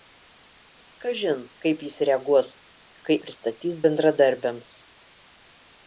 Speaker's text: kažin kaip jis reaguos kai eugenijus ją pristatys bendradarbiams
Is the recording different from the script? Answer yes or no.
yes